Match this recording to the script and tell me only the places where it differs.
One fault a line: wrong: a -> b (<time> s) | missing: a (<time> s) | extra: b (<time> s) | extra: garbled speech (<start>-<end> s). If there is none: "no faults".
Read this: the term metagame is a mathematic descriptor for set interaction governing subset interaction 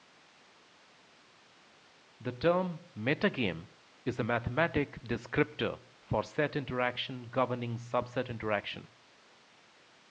no faults